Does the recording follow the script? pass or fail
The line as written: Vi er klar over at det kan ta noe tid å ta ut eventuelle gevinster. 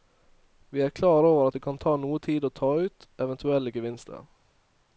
pass